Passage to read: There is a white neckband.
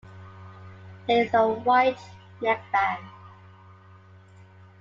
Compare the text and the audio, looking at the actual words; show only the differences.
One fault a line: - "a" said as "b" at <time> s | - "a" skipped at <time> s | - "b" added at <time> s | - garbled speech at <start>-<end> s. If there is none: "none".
none